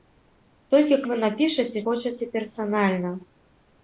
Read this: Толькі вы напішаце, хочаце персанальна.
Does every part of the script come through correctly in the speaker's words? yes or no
yes